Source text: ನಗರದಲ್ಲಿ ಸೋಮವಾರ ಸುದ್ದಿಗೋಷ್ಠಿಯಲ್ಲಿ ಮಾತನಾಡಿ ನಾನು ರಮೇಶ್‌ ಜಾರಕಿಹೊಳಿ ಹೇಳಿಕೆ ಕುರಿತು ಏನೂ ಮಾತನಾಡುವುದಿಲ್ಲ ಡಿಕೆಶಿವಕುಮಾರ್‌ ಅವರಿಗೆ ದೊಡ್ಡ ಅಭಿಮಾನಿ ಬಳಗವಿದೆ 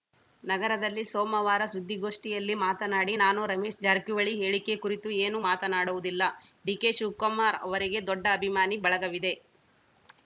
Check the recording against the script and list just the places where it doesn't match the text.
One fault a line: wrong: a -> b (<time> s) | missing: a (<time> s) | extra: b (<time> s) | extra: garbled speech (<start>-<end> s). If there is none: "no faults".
no faults